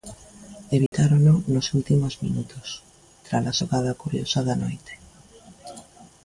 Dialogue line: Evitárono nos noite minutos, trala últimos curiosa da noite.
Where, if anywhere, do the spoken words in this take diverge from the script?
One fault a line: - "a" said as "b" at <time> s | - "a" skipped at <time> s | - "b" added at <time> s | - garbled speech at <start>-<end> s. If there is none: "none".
- "noite" said as "últimos" at 1.8 s
- "últimos" said as "xogada" at 3.6 s